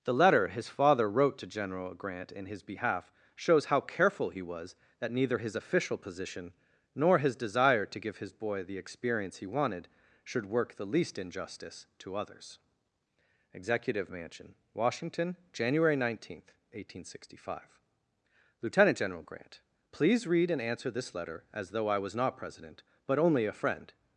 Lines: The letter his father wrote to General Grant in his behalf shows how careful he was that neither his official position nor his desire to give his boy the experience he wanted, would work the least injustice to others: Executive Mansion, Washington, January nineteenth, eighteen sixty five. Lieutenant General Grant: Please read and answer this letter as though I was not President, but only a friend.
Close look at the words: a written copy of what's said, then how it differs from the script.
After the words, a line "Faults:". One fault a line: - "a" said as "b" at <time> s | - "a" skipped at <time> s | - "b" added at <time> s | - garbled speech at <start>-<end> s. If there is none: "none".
The letter his father wrote to General Grant in his behalf shows how careful he was that neither his official position nor his desire to give his boy the experience he wanted, should work the least injustice to others: Executive Mansion, Washington, January nineteenth, eighteen sixty five. Lieutenant General Grant: Please read and answer this letter as though I was not President, but only a friend.
Faults:
- "would" said as "should" at 10.2 s